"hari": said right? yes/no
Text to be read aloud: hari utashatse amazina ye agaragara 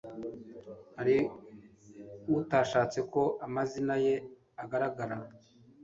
yes